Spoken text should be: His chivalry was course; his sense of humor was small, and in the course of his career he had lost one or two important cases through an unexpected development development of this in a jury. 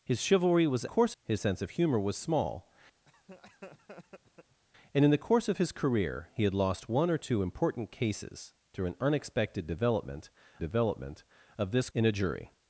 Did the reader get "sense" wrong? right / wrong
right